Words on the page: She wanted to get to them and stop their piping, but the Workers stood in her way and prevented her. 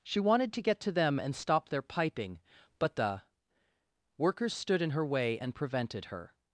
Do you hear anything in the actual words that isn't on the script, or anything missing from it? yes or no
no